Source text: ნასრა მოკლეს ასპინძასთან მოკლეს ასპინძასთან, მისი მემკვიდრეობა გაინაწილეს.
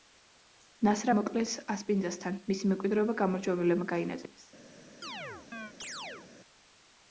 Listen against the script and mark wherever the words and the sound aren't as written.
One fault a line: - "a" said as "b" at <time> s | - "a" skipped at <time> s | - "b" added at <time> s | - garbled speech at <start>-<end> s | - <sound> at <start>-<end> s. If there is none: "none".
- "მოკლეს ასპინძასთან" skipped at 2.4 s
- "გამარჯვებულებმა" added at 3.2 s
- chirp at 5.0-6.3 s